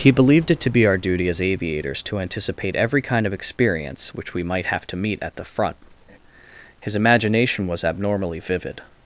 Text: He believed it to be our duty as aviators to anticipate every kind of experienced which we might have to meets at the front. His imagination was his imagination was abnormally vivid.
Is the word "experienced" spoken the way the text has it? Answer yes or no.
no